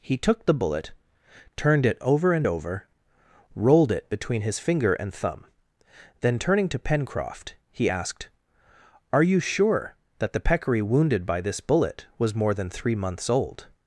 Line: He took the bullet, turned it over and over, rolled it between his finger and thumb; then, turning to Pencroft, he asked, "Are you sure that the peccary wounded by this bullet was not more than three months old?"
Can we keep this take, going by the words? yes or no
no